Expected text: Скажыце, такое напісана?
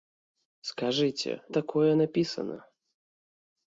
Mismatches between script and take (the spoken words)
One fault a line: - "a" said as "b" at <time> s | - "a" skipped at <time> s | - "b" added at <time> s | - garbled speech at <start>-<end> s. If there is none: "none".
none